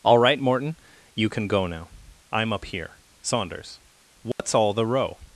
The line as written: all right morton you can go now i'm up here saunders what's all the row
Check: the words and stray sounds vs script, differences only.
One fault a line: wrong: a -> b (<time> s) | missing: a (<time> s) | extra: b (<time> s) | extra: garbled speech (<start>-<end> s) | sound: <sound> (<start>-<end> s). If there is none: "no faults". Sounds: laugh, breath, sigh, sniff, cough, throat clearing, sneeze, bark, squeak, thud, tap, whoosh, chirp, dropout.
sound: dropout (4.3-4.4 s)